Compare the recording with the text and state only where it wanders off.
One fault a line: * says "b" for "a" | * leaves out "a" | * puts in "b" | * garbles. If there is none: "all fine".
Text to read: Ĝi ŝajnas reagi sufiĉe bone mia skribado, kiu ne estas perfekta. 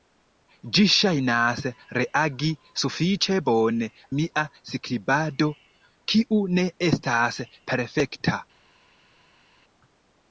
all fine